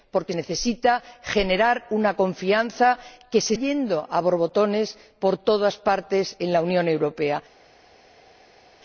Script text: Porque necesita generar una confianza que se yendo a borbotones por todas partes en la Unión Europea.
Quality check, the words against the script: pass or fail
pass